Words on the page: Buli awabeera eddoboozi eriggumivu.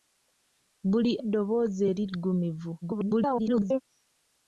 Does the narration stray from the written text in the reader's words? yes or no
yes